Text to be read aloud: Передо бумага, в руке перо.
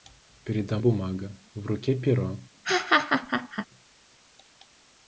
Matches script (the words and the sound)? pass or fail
fail